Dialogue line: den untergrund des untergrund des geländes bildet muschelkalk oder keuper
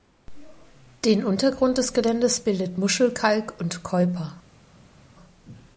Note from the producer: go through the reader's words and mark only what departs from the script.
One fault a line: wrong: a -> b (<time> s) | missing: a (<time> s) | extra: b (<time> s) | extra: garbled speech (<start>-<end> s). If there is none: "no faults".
missing: untergrund des (1.9 s)
wrong: oder -> und (3.6 s)